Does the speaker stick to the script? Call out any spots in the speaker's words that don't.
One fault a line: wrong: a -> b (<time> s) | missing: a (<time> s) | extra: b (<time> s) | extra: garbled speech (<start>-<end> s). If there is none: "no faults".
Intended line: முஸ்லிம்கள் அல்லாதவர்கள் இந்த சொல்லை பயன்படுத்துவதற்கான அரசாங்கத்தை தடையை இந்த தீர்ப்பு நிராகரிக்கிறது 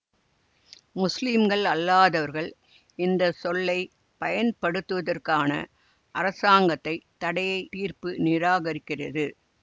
missing: இந்த (7.6 s)